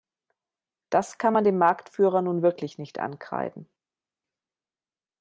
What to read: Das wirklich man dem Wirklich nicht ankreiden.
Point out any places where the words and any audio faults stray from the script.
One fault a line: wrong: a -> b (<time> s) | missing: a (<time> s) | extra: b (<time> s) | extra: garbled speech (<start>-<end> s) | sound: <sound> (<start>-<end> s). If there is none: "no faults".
wrong: wirklich -> kann (1.2 s)
extra: Marktführer nun (1.6 s)